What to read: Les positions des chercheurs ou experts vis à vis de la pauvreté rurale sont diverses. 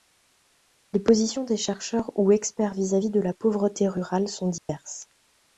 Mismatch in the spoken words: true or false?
false